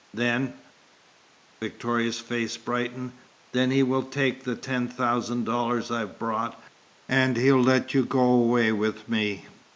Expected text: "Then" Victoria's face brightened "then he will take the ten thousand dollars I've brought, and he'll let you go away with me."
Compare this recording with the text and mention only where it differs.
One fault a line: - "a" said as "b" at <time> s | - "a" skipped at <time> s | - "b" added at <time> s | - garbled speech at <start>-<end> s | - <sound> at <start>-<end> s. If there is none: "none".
none